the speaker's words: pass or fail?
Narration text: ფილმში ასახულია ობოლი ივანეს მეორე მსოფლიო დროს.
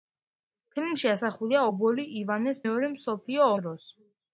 pass